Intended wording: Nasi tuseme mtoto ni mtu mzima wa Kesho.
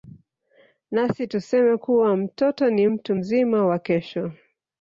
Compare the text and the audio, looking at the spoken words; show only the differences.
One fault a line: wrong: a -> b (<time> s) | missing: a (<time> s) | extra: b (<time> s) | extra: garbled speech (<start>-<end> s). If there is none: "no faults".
extra: kuwa (1.8 s)